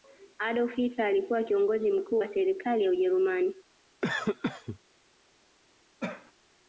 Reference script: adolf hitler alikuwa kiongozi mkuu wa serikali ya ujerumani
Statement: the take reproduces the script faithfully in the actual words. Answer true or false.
true